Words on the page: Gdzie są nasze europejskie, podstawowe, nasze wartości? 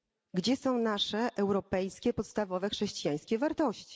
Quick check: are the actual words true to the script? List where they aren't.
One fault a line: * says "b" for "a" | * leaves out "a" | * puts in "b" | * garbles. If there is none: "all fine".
* says "chrześcijańskie" for "nasze"